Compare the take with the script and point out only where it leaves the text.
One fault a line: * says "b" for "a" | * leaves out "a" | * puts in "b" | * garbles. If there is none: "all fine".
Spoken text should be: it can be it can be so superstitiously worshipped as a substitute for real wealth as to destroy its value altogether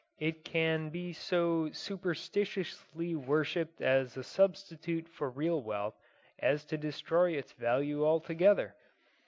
* leaves out "it can be"